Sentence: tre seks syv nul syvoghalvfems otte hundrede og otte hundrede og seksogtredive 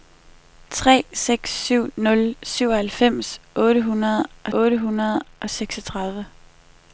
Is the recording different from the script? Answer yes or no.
no